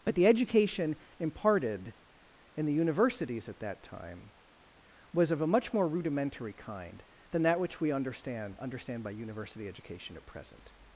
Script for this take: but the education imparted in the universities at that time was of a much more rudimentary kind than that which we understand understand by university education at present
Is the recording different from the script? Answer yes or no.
no